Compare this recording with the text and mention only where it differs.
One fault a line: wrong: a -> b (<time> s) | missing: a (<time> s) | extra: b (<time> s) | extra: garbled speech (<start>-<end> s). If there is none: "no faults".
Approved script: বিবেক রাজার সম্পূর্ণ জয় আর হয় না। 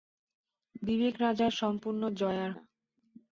missing: হয় (2.5 s)